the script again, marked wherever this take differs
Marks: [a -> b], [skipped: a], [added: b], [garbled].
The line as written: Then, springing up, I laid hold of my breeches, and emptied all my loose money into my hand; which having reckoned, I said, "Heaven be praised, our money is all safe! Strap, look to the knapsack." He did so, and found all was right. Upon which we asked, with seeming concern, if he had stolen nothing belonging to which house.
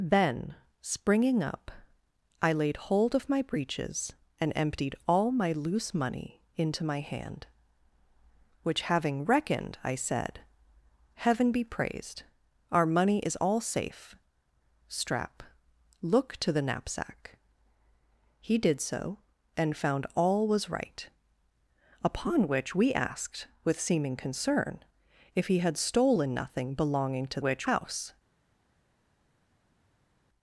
Then, springing up, I laid hold of my breeches, and emptied all my loose money into my hand; which having reckoned, I said, "Heaven be praised, our money is all safe! Strap, look to the knapsack." He did so, and found all was right. Upon which we asked, with seeming concern, if he had stolen nothing belonging to which house.